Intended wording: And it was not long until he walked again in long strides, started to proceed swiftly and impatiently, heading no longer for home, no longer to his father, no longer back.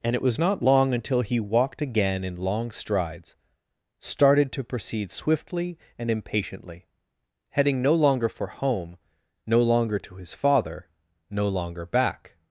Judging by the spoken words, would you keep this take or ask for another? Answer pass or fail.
pass